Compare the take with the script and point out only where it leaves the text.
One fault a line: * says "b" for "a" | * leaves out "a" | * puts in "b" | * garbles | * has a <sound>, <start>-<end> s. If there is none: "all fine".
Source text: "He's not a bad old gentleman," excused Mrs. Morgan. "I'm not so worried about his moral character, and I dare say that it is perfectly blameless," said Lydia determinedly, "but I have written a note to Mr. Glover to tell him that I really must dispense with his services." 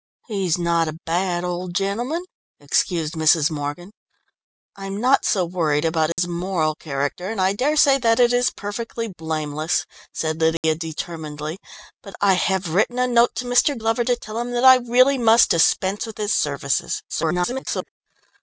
* has a dropout, 6.1-6.2 s
* has a dropout, 10.6-10.6 s
* garbles